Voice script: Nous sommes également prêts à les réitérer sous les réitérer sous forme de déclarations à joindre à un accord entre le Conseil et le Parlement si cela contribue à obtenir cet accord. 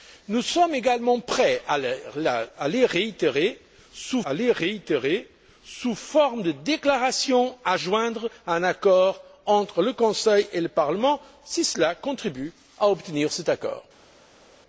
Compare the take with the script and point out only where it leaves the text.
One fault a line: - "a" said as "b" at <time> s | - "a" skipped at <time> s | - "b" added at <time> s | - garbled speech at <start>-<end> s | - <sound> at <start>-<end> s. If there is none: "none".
none